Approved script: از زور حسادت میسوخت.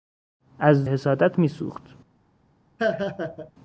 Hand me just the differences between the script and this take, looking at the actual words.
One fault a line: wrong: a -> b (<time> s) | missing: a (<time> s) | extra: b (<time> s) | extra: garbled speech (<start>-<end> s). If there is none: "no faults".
missing: زور (0.8 s)